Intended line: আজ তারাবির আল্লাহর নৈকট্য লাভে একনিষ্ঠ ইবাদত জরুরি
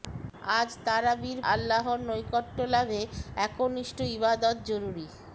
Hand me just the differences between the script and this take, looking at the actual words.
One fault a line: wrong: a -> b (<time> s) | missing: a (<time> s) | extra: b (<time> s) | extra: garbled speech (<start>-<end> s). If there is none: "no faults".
no faults